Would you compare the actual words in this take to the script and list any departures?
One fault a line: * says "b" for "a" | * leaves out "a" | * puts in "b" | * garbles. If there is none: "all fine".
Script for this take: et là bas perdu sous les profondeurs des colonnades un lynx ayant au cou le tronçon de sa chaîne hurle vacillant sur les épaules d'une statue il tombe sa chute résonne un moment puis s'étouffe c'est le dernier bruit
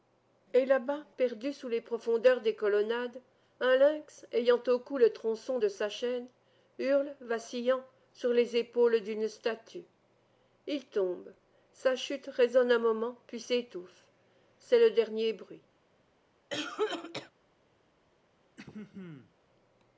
all fine